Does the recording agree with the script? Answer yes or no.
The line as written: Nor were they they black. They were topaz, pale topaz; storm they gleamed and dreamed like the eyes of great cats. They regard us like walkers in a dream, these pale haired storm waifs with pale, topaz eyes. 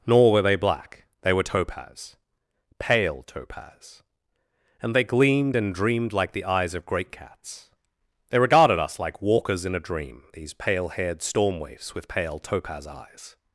no